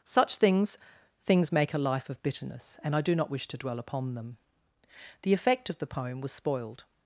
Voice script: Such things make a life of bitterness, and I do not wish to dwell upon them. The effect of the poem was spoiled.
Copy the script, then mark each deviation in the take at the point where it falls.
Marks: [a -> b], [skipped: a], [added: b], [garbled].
Such things [added: things] make a life of bitterness, and I do not wish to dwell upon them. The effect of the poem was spoiled.